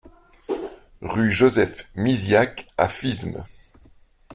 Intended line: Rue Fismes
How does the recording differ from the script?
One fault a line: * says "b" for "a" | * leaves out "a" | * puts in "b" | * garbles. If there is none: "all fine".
* puts in "Joseph Misiack à"